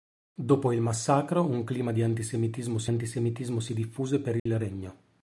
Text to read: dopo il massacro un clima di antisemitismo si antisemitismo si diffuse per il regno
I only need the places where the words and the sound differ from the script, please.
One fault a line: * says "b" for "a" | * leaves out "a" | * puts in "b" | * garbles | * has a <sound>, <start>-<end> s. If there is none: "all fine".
* has a dropout, 4.4-4.5 s